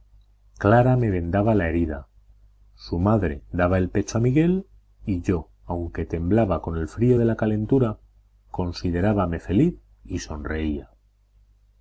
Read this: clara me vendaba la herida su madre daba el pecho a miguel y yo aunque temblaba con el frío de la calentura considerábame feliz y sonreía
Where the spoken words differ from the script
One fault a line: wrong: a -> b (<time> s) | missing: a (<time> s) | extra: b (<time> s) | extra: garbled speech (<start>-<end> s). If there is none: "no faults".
no faults